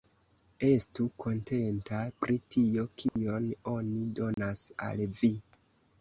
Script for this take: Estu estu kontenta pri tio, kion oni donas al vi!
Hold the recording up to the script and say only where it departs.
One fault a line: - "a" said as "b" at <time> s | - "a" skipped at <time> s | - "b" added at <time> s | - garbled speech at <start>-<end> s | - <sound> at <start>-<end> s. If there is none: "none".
- "estu" skipped at 1.0 s
- dropout at 3.1-3.2 s
- dropout at 4.3-4.4 s